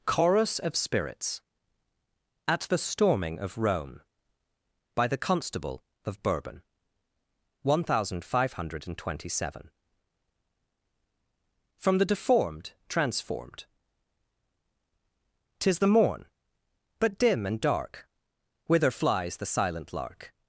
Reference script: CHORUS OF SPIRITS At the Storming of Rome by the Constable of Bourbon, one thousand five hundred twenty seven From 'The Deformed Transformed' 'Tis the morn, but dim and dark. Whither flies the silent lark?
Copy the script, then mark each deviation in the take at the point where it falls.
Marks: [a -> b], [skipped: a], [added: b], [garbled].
CHORUS OF SPIRITS At the Storming of Rome by the Constable of Bourbon, one thousand five hundred twenty seven From 'The Deformed Transformed' 'Tis the morn, but dim and dark. Whither flies the silent lark?